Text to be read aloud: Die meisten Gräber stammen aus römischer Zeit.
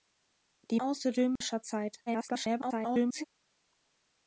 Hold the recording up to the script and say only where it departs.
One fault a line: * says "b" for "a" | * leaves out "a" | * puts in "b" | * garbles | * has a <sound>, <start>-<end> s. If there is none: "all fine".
* leaves out "meisten Gräber stammen"
* has a dropout, 1.4-1.4 s
* garbles